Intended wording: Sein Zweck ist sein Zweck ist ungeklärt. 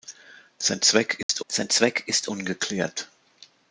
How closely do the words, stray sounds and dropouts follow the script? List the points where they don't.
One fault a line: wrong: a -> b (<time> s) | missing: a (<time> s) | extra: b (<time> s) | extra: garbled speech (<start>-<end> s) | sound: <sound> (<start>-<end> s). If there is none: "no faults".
sound: dropout (1.2-1.3 s)